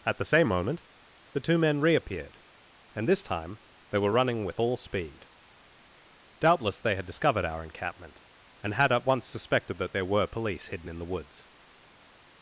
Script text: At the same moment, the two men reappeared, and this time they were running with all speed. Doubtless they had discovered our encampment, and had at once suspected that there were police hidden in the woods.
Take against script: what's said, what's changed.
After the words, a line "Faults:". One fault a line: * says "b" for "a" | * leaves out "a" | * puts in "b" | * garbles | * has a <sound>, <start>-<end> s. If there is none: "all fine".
At the same moment, the two men reappeared, and this time they were running with all speed. Doubtless they had discovered our encampment, and had at once suspected that there were police hidden in the woods.
Faults:
all fine